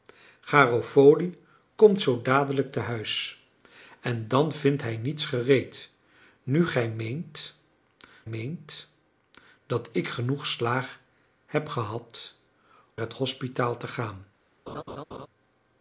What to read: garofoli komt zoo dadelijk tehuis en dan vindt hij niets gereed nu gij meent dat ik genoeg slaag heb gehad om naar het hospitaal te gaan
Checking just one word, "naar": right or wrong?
wrong